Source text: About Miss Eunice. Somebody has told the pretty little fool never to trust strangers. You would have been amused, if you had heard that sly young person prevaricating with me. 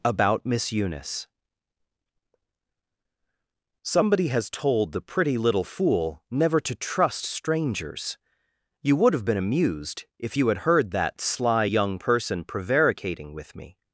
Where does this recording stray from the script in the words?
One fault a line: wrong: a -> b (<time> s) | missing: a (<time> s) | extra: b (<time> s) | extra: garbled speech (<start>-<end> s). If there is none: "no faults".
no faults